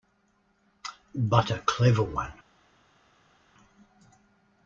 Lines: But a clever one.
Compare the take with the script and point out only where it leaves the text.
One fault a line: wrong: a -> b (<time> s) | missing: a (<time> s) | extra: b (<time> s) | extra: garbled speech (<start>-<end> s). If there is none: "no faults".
no faults